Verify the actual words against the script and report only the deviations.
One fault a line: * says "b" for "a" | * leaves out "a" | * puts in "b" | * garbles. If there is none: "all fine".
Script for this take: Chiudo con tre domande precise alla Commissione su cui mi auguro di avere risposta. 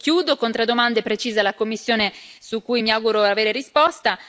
all fine